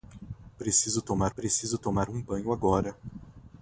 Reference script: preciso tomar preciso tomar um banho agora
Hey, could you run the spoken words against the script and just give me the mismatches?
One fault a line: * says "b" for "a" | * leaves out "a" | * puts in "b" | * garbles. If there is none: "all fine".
all fine